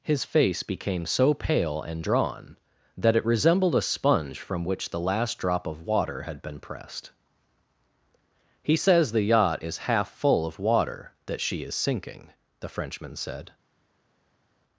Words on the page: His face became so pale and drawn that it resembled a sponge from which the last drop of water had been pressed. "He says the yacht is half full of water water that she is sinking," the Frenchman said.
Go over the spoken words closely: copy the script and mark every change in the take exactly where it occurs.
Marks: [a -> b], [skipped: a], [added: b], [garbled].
His face became so pale and drawn that it resembled a sponge from which the last drop of water had been pressed. "He says the yacht is half full of water [skipped: water] that she is sinking," the Frenchman said.